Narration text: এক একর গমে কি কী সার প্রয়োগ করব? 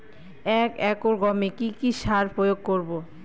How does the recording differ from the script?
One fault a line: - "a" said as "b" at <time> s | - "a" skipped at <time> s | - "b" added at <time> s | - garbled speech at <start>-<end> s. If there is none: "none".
none